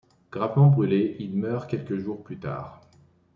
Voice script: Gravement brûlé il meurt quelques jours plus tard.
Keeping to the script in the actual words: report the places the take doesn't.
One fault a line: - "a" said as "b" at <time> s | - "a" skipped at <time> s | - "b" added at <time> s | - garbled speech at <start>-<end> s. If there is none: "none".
none